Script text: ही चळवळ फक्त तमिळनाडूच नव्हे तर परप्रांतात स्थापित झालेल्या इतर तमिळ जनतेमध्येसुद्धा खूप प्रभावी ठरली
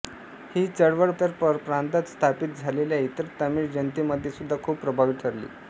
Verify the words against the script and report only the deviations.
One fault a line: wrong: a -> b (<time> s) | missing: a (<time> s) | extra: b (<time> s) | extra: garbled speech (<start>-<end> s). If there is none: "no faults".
missing: फक्त तमिळनाडूच नव्हे (1.1 s)